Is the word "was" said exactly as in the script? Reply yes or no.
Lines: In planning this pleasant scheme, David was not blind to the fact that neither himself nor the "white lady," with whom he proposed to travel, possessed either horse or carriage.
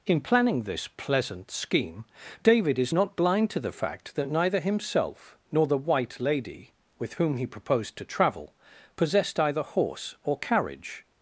no